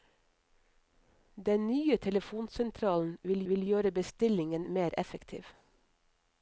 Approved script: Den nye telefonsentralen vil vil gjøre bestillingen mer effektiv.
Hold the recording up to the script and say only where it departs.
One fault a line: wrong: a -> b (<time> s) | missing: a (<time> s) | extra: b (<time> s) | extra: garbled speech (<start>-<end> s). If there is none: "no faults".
no faults